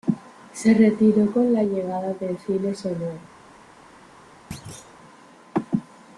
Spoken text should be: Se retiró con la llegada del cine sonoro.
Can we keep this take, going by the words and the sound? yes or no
no